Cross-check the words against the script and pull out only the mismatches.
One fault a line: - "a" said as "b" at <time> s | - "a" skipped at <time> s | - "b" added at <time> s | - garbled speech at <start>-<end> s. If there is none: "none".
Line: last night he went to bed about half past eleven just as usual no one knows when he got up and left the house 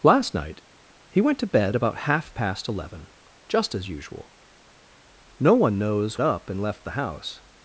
- "when he got" skipped at 6.2 s